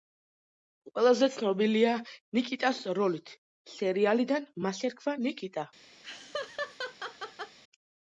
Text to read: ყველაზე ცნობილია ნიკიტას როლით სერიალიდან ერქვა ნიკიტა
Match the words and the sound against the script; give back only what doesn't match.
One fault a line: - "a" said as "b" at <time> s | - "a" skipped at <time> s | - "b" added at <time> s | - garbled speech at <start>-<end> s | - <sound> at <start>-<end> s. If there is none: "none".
- "მას" added at 4.7 s
- laugh at 6.0-7.6 s